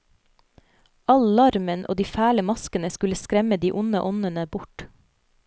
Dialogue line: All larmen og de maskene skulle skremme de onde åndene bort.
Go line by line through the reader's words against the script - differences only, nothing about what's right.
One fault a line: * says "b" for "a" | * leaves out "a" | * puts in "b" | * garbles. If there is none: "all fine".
* puts in "fæle"